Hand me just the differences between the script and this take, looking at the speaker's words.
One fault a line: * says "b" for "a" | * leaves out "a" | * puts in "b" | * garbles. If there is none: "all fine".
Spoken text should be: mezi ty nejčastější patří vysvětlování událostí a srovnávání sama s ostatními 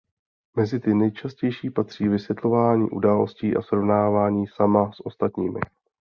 all fine